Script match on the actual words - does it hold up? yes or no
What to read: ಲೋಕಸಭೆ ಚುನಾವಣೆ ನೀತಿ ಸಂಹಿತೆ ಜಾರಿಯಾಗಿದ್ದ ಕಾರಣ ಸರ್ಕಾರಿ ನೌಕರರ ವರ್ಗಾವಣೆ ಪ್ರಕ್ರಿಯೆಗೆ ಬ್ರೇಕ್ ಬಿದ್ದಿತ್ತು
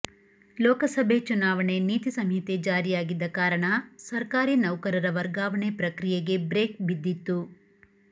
yes